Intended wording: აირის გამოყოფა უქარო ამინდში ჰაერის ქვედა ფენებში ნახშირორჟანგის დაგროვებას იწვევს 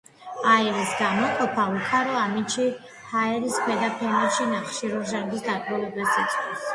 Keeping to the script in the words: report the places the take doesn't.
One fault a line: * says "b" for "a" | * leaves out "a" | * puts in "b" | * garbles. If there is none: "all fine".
all fine